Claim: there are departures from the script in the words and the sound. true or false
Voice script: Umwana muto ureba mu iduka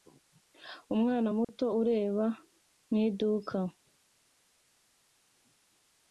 true